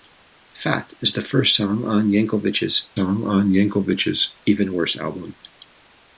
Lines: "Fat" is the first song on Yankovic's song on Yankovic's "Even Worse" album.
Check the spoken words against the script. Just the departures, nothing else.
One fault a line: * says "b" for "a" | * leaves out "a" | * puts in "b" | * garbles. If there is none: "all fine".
all fine